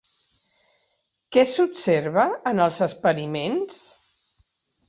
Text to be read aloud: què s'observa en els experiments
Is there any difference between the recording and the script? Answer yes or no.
no